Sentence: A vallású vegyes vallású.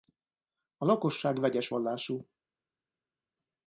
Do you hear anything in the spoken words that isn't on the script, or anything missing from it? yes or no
yes